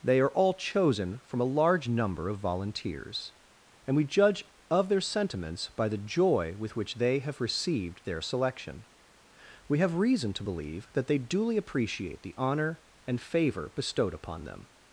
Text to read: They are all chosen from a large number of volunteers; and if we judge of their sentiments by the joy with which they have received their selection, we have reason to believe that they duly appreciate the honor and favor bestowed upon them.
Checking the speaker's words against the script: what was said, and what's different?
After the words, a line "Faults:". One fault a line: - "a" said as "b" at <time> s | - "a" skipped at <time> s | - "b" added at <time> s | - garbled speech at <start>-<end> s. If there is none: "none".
They are all chosen from a large number of volunteers; and we judge of their sentiments by the joy with which they have received their selection, we have reason to believe that they duly appreciate the honor and favor bestowed upon them.
Faults:
- "if" skipped at 4.0 s